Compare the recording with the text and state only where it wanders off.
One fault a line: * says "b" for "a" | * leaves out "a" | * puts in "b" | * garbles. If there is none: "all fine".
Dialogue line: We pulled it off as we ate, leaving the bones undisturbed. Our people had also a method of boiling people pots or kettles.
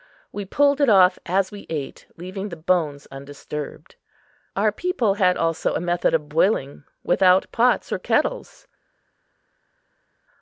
* says "without" for "people"